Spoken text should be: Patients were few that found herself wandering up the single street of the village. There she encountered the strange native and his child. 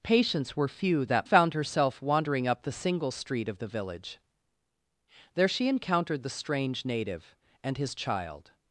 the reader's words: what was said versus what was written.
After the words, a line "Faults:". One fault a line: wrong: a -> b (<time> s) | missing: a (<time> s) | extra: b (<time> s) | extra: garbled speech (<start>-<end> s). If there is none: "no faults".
Patients were few that found herself wandering up the single street of the village. There she encountered the strange native and his child.
Faults:
no faults